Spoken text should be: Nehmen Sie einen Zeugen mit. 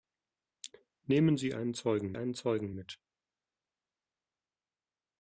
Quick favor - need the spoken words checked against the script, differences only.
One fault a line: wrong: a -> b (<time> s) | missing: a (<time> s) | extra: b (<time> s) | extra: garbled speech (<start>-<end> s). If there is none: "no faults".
extra: einen Zeugen (2.1 s)